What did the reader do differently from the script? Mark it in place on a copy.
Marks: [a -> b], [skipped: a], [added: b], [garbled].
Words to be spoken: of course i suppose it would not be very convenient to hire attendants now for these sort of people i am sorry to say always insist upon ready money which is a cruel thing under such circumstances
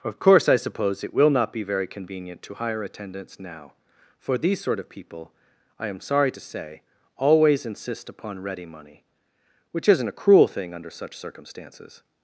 of course i suppose it [would -> will] not be very convenient to hire attendants now for these sort of people i am sorry to say always insist upon ready money which [is -> isn't] a cruel thing under such circumstances